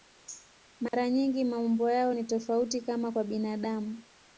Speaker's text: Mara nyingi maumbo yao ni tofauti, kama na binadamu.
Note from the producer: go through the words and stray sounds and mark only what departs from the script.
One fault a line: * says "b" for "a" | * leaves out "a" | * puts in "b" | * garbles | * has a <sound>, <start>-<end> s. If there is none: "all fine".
* has a dropout, 0.9-0.9 s
* says "kwa" for "na"